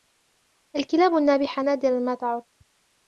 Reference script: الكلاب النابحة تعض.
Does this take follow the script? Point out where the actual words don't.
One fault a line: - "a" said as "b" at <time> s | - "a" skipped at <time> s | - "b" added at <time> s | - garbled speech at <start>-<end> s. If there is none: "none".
- "نادراً ما" added at 1.6 s